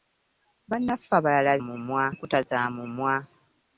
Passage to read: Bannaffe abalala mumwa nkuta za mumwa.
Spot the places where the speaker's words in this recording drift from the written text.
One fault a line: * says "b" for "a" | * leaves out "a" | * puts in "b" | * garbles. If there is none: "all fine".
all fine